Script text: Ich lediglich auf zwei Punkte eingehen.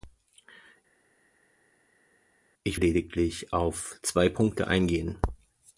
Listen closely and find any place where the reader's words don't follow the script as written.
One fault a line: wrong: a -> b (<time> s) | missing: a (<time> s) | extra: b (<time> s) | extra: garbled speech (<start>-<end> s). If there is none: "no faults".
no faults